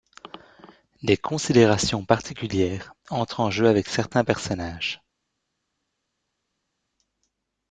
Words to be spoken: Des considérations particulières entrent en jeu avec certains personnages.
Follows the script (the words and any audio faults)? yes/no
yes